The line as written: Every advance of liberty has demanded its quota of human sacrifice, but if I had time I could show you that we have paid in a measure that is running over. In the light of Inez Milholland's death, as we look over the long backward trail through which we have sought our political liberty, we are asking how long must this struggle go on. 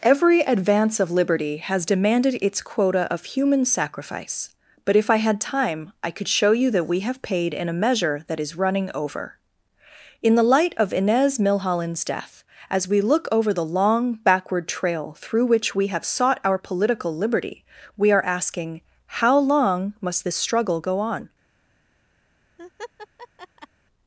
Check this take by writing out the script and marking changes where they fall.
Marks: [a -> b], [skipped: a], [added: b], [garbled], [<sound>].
Every advance of liberty has demanded its quota of human sacrifice, but if I had time I could show you that we have paid in a measure that is running over. In the light of Inez Milholland's death, as we look over the long backward trail through which we have sought our political liberty, we are asking how long must this struggle go on. [laugh]